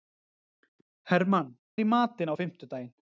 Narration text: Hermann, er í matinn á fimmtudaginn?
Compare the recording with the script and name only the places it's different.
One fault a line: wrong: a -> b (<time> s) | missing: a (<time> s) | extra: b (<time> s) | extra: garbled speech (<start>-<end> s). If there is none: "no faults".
no faults